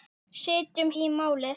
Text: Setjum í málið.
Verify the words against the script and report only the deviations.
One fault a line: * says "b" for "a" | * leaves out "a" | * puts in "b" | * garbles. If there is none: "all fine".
all fine